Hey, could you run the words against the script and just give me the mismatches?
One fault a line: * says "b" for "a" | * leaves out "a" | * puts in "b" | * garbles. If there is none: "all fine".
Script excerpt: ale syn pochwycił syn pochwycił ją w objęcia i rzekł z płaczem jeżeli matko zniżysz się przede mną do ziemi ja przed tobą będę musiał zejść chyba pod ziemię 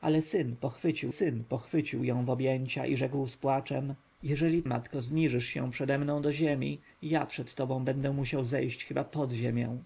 all fine